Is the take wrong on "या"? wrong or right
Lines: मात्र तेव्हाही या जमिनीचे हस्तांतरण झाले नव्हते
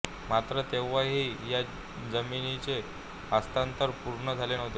right